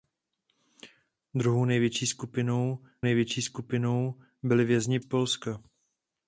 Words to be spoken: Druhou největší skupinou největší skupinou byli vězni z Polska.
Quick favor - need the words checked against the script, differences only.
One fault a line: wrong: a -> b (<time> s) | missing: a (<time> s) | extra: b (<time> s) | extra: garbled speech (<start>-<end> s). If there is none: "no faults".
no faults